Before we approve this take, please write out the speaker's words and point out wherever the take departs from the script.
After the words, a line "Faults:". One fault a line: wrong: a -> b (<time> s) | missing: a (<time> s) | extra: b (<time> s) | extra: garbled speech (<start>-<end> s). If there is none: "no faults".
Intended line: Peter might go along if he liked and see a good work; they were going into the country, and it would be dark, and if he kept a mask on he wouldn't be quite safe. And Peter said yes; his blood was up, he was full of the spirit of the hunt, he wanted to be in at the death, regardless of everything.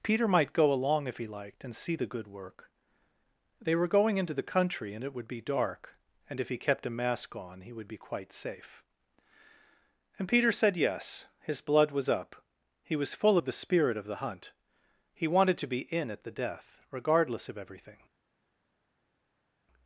Peter might go along if he liked and see the good work; they were going into the country, and it would be dark, and if he kept a mask on he would be quite safe. And Peter said yes; his blood was up, he was full of the spirit of the hunt, he wanted to be in at the death, regardless of everything.
Faults:
wrong: a -> the (1.9 s)
wrong: wouldn't -> would (7.7 s)